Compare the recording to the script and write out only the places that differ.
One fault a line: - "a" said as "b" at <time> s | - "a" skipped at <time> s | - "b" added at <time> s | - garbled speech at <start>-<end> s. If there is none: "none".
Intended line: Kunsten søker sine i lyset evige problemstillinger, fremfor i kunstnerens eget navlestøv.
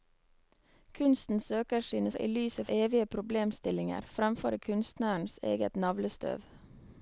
none